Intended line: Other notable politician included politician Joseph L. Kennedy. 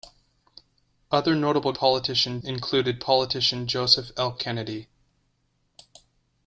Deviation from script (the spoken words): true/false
false